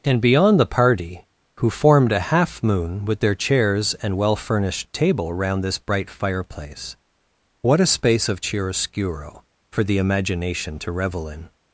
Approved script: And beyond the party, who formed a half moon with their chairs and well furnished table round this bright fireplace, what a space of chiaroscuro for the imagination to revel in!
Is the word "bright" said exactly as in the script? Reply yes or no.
yes